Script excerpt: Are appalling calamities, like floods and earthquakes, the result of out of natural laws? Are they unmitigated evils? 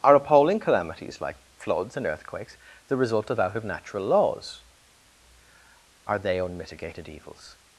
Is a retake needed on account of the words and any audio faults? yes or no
no